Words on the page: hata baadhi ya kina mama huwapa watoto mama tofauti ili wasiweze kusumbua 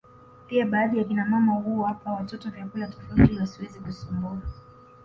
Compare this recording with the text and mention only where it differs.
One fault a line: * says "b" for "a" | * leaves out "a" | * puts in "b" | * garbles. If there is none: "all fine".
* says "pia" for "hata"
* says "vyakula" for "mama"